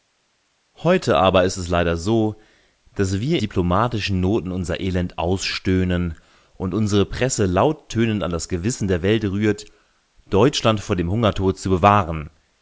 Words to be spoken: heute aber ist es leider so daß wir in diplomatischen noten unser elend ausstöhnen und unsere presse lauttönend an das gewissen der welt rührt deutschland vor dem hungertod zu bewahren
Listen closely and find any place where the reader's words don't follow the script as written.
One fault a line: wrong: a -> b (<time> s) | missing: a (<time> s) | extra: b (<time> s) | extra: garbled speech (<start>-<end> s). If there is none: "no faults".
missing: in (3.4 s)